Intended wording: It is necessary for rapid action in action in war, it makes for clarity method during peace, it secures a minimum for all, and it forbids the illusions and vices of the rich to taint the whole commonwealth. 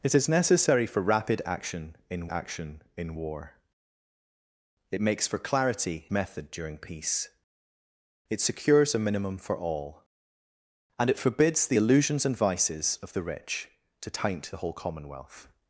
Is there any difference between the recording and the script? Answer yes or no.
no